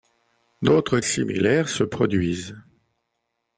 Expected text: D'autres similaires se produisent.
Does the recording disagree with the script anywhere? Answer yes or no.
no